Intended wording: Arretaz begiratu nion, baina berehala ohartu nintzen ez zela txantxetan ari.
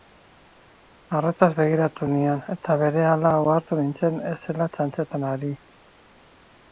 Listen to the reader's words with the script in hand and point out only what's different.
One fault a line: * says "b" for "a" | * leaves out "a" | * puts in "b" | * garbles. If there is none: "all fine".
* says "eta" for "baina"